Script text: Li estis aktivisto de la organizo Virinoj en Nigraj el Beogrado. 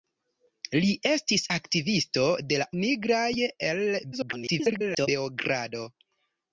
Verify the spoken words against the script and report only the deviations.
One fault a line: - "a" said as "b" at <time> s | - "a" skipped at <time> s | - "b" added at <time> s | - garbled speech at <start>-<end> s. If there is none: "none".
- "organizo Virinoj en" skipped at 2.7 s
- garbled speech at 4.1-5.1 s